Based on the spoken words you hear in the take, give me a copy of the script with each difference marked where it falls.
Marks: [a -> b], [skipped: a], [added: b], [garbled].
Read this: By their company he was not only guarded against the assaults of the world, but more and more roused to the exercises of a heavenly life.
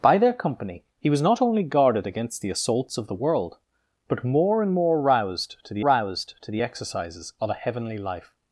By their company he was not only guarded against the assaults of the world, but more and more roused to the [added: roused to the] exercises of a heavenly life.